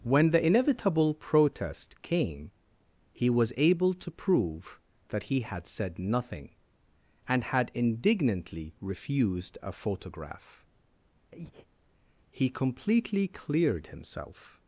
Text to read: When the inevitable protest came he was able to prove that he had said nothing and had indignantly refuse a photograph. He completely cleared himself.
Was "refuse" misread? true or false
true